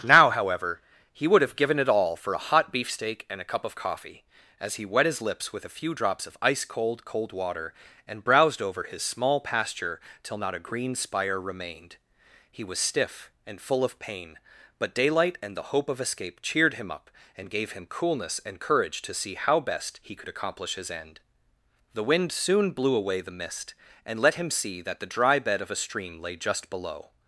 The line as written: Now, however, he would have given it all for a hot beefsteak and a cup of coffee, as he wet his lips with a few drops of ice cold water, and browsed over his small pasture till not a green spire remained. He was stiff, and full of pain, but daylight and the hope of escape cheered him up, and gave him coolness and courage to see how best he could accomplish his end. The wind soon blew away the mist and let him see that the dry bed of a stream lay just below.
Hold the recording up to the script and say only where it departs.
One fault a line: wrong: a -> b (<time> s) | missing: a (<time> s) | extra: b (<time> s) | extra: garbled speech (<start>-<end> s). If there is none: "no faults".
extra: cold (7.0 s)